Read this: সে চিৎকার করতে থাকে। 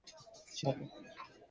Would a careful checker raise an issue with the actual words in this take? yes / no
yes